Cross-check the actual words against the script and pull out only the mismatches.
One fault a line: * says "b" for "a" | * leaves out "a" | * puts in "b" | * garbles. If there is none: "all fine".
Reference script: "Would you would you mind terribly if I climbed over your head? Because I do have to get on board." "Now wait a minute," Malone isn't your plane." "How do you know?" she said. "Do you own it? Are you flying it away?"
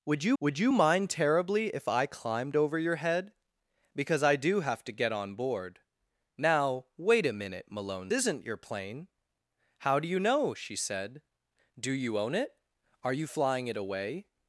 all fine